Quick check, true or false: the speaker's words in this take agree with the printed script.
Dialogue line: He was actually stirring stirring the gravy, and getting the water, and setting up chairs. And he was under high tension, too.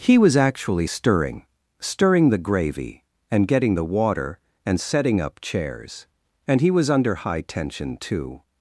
true